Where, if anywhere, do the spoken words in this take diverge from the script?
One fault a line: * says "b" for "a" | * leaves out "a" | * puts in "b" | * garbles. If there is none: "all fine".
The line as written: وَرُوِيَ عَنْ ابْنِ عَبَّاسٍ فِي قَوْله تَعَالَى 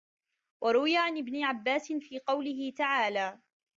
all fine